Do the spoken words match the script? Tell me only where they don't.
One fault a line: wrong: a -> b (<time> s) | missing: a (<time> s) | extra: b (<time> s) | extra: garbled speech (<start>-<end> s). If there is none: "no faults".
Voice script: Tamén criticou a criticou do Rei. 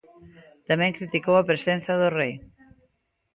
wrong: criticou -> presenza (1.5 s)